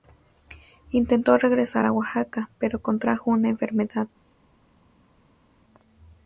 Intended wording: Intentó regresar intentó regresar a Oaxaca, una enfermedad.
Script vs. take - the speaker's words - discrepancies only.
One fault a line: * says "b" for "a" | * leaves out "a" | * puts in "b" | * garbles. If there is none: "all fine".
* says "a Oaxaca pero contrajo" for "intentó regresar a Oaxaca"